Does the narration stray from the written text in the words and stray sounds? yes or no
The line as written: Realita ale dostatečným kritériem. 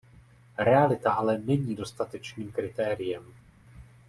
yes